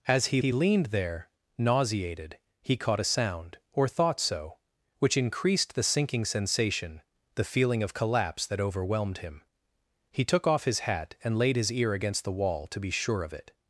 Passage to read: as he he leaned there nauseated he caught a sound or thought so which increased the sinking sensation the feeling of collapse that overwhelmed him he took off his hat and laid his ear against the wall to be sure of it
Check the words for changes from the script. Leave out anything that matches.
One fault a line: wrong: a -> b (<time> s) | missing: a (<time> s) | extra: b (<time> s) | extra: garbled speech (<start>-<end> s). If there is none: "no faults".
no faults